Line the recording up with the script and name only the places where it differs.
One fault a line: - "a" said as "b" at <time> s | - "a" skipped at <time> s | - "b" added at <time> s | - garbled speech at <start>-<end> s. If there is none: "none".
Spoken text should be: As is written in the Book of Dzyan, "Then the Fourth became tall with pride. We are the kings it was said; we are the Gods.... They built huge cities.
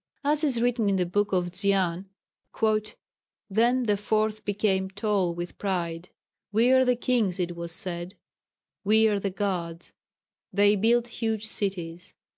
none